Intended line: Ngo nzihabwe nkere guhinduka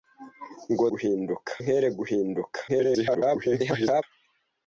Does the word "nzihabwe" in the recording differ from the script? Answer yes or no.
yes